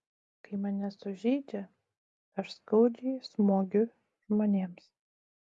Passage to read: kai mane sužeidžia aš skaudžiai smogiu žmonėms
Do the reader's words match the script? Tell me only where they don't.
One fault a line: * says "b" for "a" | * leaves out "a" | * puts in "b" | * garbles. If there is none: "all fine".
all fine